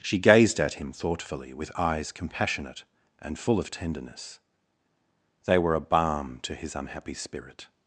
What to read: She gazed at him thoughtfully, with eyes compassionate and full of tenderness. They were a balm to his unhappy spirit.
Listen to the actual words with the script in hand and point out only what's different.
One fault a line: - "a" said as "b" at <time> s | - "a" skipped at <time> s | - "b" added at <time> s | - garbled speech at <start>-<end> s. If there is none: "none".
none